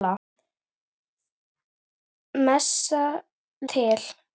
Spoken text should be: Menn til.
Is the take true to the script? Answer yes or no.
yes